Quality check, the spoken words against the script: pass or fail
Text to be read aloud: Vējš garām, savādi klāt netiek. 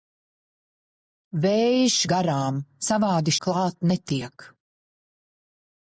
pass